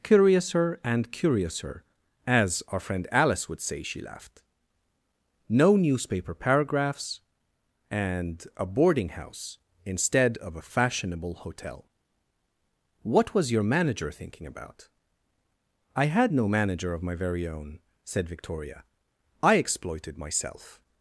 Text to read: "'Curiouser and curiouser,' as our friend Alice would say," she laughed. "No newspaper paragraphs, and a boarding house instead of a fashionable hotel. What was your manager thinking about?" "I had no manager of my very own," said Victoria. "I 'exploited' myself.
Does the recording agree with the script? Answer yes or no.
yes